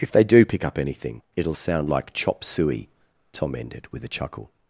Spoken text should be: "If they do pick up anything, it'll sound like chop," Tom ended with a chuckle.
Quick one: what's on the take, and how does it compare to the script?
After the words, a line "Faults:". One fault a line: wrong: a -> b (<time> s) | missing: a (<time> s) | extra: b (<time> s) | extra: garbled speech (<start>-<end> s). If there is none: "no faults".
"If they do pick up anything, it'll sound like chop suey," Tom ended with a chuckle.
Faults:
extra: suey (2.4 s)